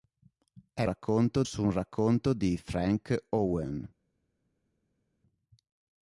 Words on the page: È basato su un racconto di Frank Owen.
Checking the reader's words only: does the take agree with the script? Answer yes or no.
no